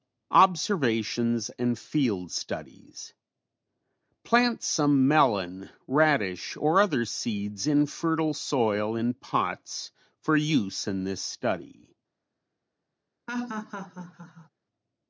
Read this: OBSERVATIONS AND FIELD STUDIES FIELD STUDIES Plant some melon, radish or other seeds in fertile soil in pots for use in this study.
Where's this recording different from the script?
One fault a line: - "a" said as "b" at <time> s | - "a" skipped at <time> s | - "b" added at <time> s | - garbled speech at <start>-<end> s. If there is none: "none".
- "FIELD STUDIES" skipped at 3.1 s